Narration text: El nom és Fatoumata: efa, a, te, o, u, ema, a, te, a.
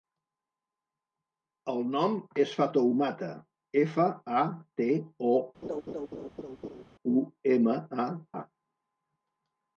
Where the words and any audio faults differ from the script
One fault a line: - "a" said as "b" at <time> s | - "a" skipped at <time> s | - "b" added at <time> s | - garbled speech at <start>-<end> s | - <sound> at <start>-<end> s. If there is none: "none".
- laugh at 5.6-6.8 s
- "te" skipped at 8.1 s